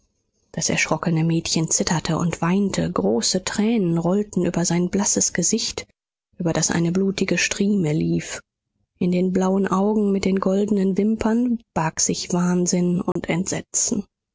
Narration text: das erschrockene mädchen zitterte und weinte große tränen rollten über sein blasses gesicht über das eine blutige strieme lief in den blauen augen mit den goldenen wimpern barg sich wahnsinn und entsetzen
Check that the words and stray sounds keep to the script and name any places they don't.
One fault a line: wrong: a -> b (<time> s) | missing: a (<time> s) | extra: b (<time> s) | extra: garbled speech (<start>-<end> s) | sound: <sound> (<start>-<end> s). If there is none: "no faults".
sound: dropout (13.1-13.2 s)